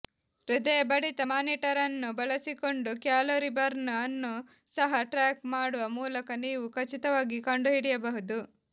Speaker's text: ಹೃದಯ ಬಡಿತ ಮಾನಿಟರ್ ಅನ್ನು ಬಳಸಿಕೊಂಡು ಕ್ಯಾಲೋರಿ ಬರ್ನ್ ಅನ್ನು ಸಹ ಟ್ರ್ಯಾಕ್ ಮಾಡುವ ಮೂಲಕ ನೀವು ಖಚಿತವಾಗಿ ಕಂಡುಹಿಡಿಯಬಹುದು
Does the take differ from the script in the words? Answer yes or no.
no